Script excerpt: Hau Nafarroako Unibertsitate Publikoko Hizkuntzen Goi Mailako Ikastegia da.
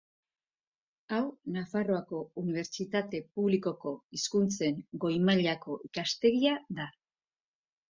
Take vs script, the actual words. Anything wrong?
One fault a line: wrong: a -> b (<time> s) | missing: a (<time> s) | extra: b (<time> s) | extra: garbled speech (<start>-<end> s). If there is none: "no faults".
no faults